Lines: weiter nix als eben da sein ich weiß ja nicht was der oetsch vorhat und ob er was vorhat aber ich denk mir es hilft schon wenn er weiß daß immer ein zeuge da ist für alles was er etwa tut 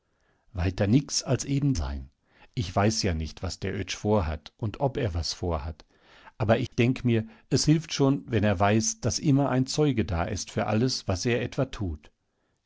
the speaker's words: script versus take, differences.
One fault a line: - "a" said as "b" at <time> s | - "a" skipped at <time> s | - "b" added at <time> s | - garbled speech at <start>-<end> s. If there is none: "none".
- "da" skipped at 1.8 s